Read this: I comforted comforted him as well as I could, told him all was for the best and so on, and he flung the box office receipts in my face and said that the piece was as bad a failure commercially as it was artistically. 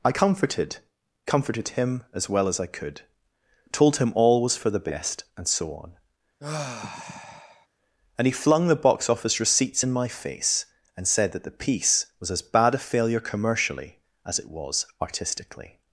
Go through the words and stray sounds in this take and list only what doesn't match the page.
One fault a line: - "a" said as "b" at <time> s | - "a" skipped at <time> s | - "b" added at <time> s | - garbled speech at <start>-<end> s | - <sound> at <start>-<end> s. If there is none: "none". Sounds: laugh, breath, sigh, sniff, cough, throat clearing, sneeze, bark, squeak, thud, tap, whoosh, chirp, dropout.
- sigh at 6.4-7.7 s